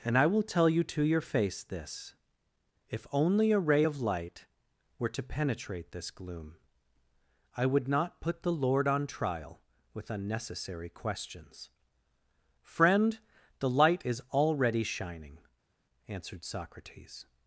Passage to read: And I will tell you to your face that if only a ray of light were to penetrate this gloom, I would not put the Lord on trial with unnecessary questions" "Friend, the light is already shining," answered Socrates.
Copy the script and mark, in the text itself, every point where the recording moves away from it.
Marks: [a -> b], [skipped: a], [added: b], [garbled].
And I will tell you to your face [that -> this] if only a ray of light were to penetrate this gloom, I would not put the Lord on trial with unnecessary questions" "Friend, the light is already shining," answered Socrates.